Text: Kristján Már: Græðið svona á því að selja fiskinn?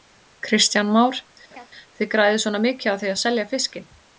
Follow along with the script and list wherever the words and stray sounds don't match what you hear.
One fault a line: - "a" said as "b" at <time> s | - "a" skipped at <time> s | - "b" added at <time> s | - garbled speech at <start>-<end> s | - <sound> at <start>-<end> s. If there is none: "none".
- laugh at 1.5-1.7 s
- "Þið" added at 2.0 s
- "mikið" added at 2.7 s